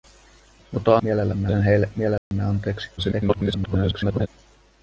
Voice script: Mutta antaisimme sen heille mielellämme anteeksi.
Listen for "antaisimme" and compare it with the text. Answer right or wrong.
wrong